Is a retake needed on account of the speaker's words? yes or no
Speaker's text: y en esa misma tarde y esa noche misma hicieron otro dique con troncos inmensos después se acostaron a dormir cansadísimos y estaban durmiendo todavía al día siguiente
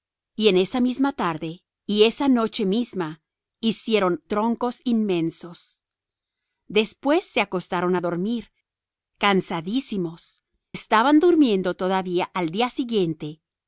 yes